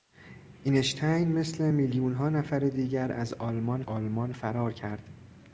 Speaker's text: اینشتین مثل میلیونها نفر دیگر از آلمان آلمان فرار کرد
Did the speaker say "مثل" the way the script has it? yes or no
yes